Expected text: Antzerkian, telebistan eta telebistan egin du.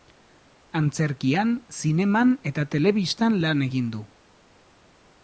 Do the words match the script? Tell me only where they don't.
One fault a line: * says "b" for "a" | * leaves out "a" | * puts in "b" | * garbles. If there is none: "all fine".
* says "zineman" for "telebistan"
* puts in "lan"